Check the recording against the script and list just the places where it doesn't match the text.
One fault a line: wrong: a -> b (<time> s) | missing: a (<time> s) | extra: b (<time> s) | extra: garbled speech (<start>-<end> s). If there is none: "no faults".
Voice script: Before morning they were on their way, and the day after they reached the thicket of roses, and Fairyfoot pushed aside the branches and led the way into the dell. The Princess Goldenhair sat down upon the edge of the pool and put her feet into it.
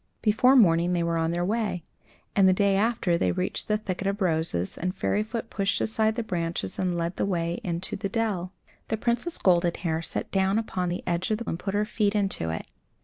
missing: pool (11.4 s)